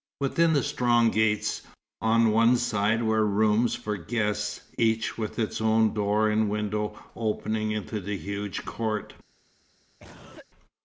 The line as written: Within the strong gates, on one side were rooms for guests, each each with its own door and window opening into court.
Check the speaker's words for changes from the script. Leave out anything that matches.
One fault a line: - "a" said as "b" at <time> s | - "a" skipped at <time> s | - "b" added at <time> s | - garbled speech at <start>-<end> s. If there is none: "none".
- "each" skipped at 5.2 s
- "the huge" added at 8.0 s